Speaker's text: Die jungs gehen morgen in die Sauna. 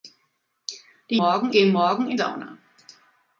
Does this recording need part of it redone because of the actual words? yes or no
yes